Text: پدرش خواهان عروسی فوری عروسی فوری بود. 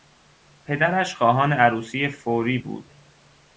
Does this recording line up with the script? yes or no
no